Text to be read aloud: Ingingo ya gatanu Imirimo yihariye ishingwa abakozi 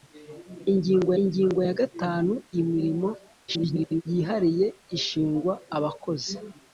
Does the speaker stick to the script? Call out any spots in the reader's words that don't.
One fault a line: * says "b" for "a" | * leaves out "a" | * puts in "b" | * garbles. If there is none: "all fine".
* puts in "ingingo"
* garbles